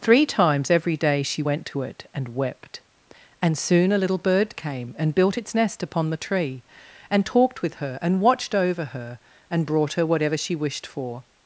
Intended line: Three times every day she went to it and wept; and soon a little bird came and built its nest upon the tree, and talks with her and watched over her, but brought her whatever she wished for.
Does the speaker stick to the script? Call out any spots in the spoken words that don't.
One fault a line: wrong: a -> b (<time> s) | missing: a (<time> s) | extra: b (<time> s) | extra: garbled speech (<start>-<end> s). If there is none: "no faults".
wrong: talks -> talked (7.2 s)
wrong: but -> and (9.5 s)